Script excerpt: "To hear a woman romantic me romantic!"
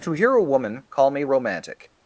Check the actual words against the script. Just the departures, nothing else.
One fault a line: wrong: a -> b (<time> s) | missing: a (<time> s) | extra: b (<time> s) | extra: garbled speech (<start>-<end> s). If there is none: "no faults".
wrong: romantic -> call (0.9 s)